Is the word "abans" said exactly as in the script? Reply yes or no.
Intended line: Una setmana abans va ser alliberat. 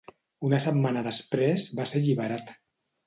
no